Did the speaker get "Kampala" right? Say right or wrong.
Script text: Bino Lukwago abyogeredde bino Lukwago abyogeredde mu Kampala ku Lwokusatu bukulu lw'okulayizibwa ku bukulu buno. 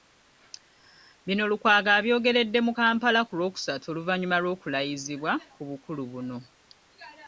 right